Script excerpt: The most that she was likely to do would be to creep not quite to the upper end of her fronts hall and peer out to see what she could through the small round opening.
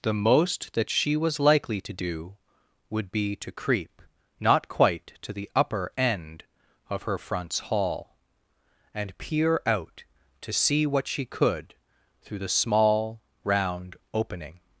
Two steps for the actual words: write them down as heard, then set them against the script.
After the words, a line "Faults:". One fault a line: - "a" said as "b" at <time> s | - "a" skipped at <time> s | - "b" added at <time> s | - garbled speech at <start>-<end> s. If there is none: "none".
The most that she was likely to do would be to creep not quite to the upper end of her fronts hall and peer out to see what she could through the small round opening.
Faults:
none